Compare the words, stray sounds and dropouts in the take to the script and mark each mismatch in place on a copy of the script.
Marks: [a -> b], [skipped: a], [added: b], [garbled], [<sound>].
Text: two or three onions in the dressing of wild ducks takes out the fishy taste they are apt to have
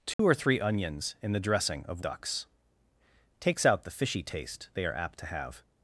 two [dropout] or three onions in the dressing of [skipped: wild] ducks takes out the fishy taste they are apt to have